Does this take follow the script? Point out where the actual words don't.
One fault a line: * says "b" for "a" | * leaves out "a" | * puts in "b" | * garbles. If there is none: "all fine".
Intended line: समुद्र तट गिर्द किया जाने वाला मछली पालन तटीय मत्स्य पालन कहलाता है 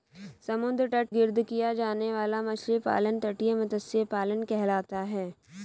all fine